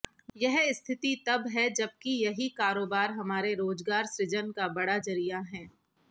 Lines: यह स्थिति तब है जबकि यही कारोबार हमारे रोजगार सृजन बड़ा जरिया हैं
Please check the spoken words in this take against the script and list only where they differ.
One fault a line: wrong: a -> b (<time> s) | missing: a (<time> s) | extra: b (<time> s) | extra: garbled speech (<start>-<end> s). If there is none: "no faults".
extra: का (4.5 s)